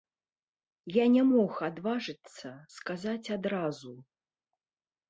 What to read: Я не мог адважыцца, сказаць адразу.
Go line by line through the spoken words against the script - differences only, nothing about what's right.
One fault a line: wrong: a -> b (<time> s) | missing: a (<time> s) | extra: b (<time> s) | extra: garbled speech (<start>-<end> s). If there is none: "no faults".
no faults